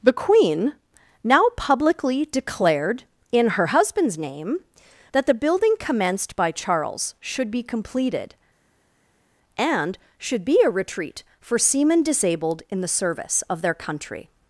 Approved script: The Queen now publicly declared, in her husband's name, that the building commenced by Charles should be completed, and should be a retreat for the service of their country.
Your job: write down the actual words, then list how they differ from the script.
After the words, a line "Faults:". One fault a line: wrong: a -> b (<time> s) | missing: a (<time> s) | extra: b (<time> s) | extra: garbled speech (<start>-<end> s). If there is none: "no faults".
The Queen now publicly declared, in her husband's name, that the building commenced by Charles should be completed, and should be a retreat for seamen disabled in the service of their country.
Faults:
extra: seamen disabled in (11.6 s)